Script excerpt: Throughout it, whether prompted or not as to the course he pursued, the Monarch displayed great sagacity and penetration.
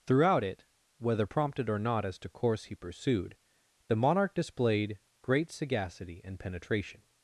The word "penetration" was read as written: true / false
true